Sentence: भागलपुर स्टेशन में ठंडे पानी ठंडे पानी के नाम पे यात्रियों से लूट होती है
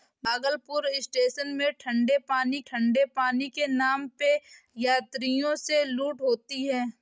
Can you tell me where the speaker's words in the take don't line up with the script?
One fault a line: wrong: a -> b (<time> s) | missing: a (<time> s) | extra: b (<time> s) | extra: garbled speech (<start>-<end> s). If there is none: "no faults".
no faults